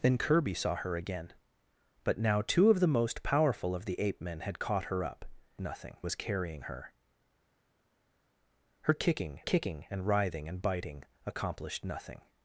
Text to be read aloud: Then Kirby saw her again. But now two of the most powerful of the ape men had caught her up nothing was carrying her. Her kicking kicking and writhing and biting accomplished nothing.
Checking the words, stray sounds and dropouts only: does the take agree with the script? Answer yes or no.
yes